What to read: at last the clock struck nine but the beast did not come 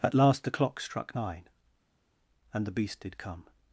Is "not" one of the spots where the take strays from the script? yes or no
yes